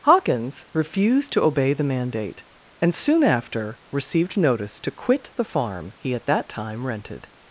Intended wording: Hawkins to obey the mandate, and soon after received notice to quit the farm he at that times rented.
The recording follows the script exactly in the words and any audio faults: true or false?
false